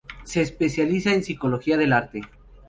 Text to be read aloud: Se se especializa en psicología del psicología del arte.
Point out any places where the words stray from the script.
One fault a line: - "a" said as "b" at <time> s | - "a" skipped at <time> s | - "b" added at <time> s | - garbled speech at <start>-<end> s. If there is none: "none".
- "se" skipped at 0.4 s
- "psicología del" skipped at 1.9 s